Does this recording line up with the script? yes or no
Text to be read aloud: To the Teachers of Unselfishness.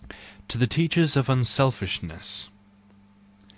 yes